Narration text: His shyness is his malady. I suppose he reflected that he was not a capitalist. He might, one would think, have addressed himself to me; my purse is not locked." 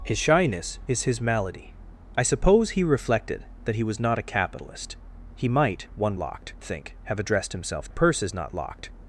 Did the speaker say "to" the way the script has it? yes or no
no